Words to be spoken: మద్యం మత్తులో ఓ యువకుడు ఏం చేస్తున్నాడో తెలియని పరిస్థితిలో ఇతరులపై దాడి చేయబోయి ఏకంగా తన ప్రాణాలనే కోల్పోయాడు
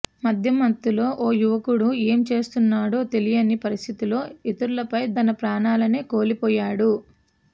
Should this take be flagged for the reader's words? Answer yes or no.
yes